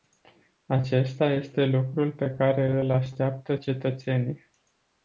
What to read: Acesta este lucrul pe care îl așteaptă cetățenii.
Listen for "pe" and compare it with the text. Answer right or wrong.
right